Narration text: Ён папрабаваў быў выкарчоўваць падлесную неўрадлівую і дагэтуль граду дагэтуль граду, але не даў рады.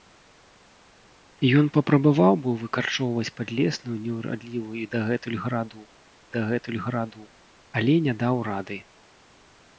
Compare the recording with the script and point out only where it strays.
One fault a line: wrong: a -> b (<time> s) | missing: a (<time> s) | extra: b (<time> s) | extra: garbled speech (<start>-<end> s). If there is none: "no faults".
no faults